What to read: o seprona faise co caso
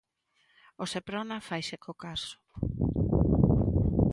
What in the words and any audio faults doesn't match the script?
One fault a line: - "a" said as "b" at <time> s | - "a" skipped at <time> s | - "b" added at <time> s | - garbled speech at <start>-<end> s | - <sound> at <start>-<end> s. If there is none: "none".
none